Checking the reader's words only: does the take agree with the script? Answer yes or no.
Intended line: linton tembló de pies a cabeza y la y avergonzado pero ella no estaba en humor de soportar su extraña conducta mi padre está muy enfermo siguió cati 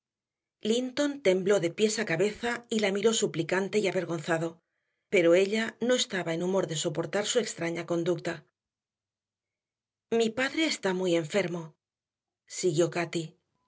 no